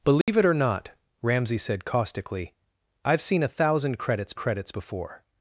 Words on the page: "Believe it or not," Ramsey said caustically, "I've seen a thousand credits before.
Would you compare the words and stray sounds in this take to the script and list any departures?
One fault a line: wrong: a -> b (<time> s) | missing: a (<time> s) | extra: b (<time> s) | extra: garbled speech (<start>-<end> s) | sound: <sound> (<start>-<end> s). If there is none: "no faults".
sound: dropout (0.2-0.3 s)
extra: credits (4.4 s)